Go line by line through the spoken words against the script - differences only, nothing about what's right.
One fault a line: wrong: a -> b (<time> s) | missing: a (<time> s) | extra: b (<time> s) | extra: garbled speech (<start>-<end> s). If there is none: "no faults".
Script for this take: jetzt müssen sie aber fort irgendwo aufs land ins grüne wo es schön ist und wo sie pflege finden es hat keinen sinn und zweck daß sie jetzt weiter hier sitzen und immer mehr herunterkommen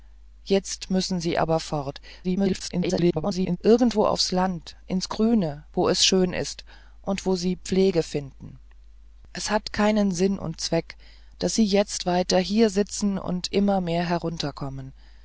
extra: garbled speech (2.2-3.6 s)